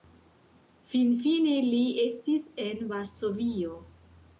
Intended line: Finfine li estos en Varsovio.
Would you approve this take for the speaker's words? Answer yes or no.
no